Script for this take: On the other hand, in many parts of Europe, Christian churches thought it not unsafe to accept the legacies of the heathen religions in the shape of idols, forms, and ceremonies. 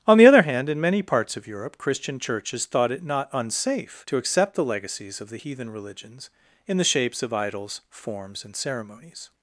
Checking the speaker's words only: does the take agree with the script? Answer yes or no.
no